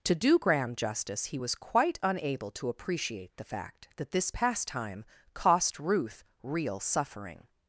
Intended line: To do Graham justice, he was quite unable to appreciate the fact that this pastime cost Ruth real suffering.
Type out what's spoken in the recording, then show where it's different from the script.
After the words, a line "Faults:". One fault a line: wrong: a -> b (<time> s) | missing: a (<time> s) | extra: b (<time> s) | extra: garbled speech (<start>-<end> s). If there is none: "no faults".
To do Graham justice, he was quite unable to appreciate the fact that this pastime cost Ruth real suffering.
Faults:
no faults